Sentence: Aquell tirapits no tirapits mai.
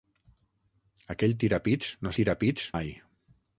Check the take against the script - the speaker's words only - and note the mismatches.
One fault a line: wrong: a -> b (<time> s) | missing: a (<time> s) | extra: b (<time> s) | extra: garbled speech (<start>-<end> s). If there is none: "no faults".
no faults